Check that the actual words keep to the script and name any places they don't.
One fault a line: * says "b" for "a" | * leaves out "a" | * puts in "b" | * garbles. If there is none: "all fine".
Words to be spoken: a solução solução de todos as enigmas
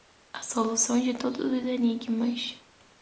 * leaves out "solução"
* says "os" for "as"